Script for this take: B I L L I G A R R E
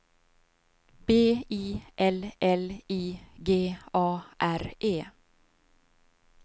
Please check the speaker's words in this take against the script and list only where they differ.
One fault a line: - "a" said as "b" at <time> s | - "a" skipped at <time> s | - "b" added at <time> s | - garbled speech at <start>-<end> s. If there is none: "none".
- "R" skipped at 4.7 s